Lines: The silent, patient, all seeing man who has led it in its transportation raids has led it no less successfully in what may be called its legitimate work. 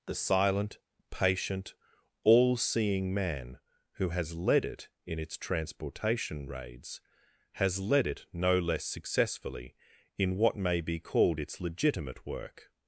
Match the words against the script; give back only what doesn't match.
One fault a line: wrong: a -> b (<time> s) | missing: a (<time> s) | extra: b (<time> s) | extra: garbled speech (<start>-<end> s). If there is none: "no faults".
no faults